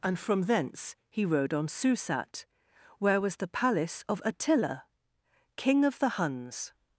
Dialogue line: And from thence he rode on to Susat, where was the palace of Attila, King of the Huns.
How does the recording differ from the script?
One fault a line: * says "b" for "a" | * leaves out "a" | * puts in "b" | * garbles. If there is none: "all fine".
* leaves out "to"